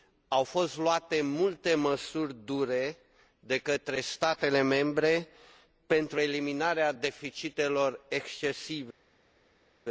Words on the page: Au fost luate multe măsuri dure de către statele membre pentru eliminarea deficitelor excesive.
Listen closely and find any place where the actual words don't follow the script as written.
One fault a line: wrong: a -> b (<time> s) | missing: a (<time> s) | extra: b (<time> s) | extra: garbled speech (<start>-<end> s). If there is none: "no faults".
no faults